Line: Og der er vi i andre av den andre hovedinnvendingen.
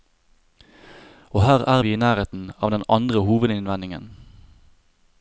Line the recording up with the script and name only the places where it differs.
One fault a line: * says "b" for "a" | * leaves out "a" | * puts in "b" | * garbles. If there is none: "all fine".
* says "her" for "der"
* says "nærheten" for "andre"